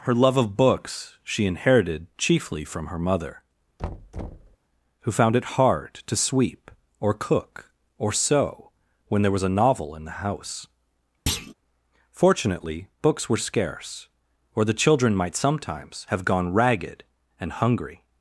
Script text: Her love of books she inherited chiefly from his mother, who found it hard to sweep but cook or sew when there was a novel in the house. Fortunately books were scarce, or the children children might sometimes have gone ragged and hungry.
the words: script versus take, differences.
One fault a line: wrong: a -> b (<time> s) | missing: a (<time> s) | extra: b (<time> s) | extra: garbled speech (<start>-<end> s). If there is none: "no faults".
wrong: his -> her (2.9 s)
wrong: but -> or (7.0 s)
missing: children (15.2 s)